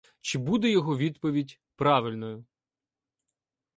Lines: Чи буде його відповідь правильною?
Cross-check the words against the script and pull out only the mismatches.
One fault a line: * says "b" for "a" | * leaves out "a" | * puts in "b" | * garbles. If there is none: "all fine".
all fine